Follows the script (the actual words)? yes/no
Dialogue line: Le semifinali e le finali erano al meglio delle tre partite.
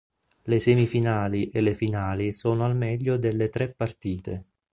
no